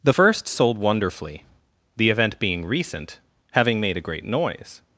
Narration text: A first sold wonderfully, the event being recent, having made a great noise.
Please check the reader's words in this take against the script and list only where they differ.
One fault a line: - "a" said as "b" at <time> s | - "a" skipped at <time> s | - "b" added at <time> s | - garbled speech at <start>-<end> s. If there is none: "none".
- "A" said as "The" at 0.0 s